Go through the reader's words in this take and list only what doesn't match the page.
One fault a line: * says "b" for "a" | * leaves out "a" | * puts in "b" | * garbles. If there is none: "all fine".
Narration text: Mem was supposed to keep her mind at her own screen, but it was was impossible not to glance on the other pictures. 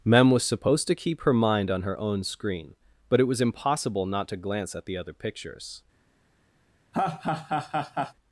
* says "on" for "at"
* leaves out "was"
* says "at" for "on"